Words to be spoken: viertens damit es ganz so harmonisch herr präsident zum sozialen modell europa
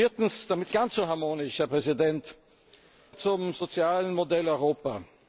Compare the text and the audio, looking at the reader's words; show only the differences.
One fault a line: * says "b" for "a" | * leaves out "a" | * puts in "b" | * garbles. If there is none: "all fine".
all fine